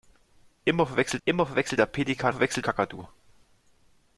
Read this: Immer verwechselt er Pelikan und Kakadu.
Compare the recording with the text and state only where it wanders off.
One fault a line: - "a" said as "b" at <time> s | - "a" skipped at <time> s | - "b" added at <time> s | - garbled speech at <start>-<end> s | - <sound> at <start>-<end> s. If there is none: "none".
- "immer verwechselt" added at 1.3 s
- "und" said as "verwechselt" at 2.3 s